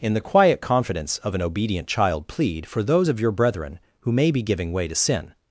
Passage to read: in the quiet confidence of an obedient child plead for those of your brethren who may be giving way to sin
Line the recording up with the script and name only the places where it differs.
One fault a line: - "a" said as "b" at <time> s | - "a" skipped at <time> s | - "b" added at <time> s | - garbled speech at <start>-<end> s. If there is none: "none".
none